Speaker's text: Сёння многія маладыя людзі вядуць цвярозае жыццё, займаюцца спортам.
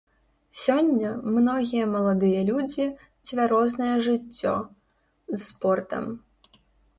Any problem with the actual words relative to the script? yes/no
yes